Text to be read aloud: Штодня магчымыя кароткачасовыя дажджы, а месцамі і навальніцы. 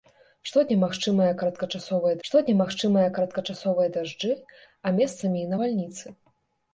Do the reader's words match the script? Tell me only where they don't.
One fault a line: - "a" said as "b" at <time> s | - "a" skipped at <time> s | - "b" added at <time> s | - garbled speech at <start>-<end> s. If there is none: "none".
- "штодня магчымыя кароткачасовыя" added at 2.3 s